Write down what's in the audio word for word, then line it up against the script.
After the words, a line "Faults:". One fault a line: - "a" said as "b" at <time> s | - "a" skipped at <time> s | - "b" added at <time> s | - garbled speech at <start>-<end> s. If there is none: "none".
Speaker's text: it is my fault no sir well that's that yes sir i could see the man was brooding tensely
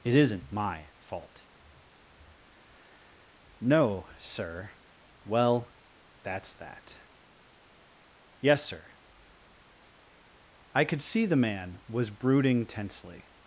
it isn't my fault no sir well that's that yes sir i could see the man was brooding tensely
Faults:
- "is" said as "isn't" at 0.1 s